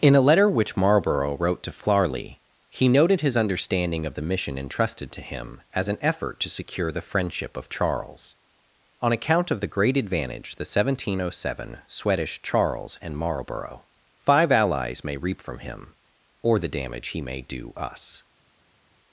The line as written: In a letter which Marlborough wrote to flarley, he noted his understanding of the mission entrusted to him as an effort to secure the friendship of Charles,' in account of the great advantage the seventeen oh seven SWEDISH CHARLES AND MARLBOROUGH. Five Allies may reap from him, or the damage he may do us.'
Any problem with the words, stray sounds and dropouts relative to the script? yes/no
yes